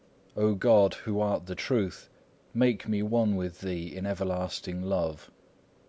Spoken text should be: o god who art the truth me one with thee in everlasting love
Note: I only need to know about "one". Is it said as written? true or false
true